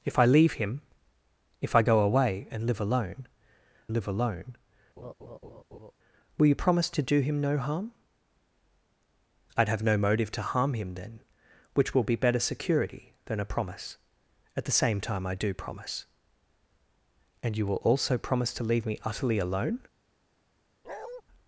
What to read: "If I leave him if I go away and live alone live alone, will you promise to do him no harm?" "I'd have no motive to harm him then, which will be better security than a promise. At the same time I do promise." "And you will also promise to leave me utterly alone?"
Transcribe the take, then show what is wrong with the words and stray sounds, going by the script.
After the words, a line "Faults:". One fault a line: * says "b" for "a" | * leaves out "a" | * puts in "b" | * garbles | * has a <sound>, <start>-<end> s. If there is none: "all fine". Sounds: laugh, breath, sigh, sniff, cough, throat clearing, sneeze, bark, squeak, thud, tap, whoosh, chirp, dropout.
"If I leave him if I go away and live alone live alone, will you promise to do him no harm?" "I'd have no motive to harm him then, which will be better security than a promise. At the same time I do promise." "And you will also promise to leave me utterly alone?"
Faults:
* has a laugh, 5.0-5.9 s
* has a bark, 20.8-21.2 s